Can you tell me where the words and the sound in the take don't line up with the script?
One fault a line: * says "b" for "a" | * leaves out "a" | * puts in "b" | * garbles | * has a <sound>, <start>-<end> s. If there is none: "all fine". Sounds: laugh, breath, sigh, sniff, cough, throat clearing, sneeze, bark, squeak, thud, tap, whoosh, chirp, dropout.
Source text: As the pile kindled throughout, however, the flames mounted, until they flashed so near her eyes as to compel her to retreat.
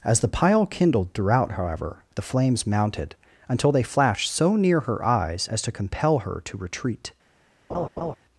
* has a laugh, 7.7-8.2 s